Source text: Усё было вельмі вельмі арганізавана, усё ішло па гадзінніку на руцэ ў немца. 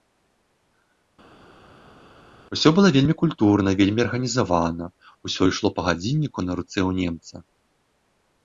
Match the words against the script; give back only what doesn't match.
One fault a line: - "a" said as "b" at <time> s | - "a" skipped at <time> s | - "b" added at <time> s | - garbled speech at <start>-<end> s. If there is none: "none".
- "культурна" added at 3.2 s